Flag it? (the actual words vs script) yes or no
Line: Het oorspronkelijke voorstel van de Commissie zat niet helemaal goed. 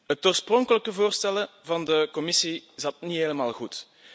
no